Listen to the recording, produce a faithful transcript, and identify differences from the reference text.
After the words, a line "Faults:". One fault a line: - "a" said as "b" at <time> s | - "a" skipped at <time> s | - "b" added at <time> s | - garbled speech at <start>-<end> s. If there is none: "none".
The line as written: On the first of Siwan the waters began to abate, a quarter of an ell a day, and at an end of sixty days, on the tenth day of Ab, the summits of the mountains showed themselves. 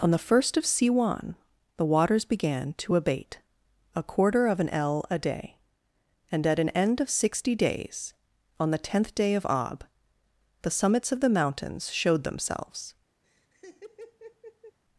On the first of Siwan the waters began to abate, a quarter of an ell a day, and at an end of sixty days, on the tenth day of Ab, the summits of the mountains showed themselves.
Faults:
none